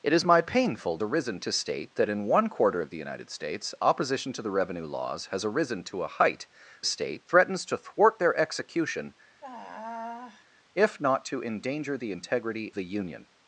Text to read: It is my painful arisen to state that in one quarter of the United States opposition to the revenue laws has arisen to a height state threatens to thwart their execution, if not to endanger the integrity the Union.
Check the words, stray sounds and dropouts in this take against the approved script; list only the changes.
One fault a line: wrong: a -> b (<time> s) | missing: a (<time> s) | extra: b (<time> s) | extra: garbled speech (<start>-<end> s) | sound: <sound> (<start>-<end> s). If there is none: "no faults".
sound: sigh (9.4-10.4 s)